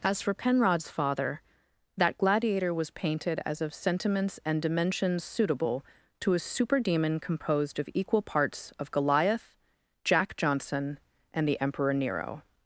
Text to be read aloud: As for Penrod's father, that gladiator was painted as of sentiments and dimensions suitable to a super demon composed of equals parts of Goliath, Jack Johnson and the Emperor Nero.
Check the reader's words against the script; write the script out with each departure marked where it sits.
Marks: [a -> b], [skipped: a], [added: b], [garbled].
As for Penrod's father, that gladiator was painted as of sentiments and dimensions suitable to a super demon composed of [equals -> equal] parts of Goliath, Jack Johnson and the Emperor Nero.